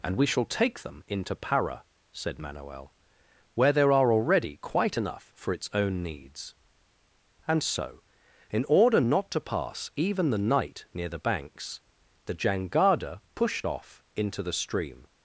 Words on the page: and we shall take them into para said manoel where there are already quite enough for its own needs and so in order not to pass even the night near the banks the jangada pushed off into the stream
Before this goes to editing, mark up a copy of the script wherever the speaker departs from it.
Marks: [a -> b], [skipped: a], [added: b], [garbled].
and we shall take them into para said manoel where there are already quite enough for its own needs and so in order not to pass even the night near the banks the jangada pushed off into the stream